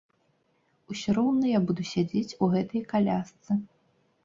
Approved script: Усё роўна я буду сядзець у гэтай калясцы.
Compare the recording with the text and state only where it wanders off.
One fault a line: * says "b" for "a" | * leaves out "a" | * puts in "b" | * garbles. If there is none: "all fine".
all fine